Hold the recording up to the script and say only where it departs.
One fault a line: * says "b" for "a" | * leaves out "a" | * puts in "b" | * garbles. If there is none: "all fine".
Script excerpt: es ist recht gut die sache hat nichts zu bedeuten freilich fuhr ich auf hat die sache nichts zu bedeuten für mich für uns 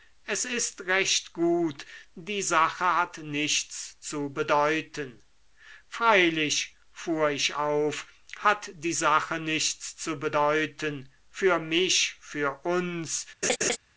all fine